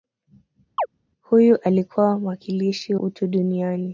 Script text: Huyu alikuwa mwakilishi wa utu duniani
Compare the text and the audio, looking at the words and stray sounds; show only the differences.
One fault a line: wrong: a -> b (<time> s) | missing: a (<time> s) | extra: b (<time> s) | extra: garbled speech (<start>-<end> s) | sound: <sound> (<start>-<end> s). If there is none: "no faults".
sound: chirp (0.8-0.9 s)
missing: wa (3.0 s)